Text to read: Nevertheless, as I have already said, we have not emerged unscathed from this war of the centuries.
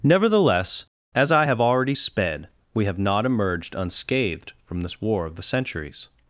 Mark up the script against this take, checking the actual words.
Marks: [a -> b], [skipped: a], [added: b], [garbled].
Nevertheless, as I have already [said, -> sped] we have not emerged unscathed from this war of the centuries.